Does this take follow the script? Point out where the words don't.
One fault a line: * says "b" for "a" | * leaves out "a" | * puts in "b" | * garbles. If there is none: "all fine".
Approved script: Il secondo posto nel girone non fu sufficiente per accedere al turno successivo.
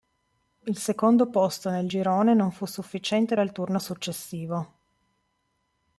* leaves out "per accedere"